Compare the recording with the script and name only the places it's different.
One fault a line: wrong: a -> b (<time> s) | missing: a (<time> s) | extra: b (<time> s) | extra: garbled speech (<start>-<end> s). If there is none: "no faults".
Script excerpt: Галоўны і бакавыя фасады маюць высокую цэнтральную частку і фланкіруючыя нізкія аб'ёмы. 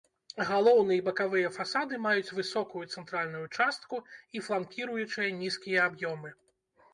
no faults